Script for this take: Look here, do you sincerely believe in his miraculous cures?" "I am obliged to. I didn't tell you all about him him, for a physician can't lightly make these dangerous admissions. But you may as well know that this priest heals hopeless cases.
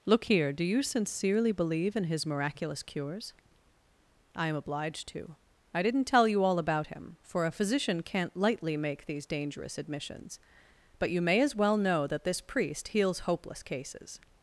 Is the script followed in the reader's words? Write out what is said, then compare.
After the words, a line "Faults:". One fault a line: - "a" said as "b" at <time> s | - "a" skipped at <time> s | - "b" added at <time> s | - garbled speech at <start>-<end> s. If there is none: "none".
Look here, do you sincerely believe in his miraculous cures?" "I am obliged to. I didn't tell you all about him, for a physician can't lightly make these dangerous admissions. But you may as well know that this priest heals hopeless cases.
Faults:
- "him" skipped at 7.2 s